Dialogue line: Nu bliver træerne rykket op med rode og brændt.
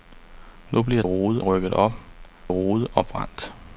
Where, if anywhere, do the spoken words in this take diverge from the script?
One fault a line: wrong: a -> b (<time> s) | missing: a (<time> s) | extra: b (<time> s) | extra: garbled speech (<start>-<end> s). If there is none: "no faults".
wrong: træerne -> rode (1.0 s)
missing: med (1.9 s)